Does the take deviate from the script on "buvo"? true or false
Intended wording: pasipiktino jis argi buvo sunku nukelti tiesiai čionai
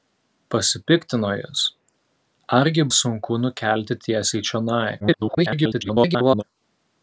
true